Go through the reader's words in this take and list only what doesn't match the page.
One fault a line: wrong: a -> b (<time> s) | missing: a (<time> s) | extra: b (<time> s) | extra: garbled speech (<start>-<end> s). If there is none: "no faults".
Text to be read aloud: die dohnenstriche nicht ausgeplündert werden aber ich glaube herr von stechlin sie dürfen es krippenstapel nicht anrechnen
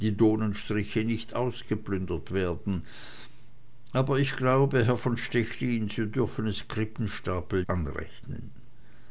missing: nicht (7.7 s)